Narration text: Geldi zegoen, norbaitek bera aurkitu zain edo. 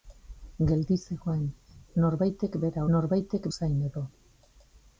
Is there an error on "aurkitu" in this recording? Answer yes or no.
yes